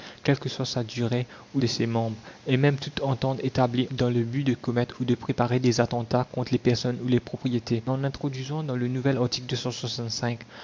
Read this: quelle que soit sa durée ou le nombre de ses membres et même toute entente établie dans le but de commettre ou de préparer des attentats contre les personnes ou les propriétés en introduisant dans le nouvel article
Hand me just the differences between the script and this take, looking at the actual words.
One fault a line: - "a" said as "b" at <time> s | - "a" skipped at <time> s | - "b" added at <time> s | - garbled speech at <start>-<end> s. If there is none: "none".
- "le nombre" skipped at 1.6 s